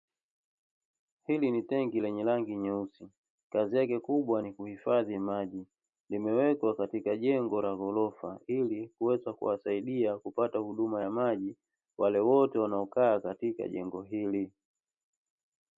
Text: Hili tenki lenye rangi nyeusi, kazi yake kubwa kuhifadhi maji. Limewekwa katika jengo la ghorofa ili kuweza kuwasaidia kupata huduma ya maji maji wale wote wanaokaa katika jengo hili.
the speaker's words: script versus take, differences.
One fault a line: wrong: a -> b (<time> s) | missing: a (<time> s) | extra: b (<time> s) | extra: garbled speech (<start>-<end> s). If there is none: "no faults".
extra: ni (1.5 s)
extra: ni (4.4 s)
missing: maji (11.6 s)